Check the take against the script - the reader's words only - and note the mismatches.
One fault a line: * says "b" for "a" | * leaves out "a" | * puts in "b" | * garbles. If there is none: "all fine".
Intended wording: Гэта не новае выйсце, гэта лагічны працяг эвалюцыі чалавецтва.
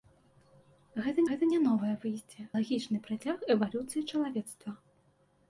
* puts in "гэта"
* leaves out "гэта"